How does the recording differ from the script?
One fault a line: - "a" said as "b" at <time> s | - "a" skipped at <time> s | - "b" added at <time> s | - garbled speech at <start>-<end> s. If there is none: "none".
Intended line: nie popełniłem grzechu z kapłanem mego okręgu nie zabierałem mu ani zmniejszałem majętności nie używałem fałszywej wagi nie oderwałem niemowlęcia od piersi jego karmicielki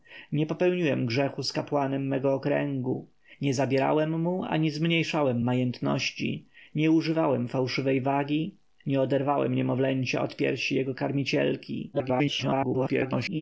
- garbled speech at 11.9-13.4 s